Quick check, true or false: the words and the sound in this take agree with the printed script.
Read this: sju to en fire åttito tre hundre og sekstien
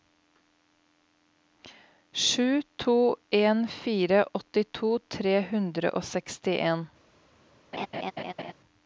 false